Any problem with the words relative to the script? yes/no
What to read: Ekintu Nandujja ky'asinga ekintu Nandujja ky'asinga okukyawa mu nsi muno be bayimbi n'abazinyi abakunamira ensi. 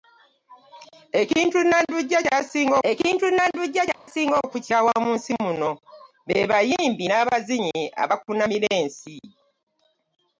no